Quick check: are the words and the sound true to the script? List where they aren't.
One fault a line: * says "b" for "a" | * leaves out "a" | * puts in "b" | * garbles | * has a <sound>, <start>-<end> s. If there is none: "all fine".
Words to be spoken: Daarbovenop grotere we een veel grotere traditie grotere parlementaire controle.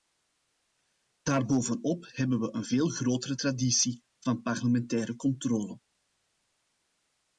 * says "hebben" for "grotere"
* says "van" for "grotere"